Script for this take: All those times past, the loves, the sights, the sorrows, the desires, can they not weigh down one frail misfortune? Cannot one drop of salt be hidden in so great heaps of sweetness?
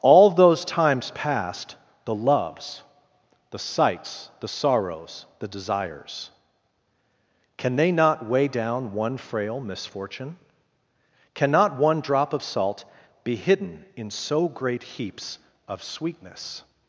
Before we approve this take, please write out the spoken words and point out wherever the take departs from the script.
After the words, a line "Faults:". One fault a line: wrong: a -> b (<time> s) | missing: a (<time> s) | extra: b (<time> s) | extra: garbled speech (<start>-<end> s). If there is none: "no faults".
All those times past, the loves, the sights, the sorrows, the desires, can they not weigh down one frail misfortune? Cannot one drop of salt be hidden in so great heaps of sweetness?
Faults:
no faults